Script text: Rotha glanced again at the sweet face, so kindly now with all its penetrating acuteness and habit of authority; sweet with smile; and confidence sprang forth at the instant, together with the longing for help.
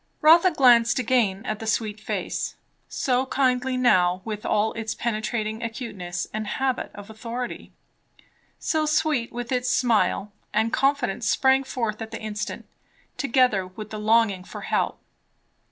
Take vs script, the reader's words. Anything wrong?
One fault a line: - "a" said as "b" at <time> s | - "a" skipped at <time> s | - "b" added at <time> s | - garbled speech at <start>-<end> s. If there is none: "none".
- "so" added at 8.6 s
- "its" added at 9.5 s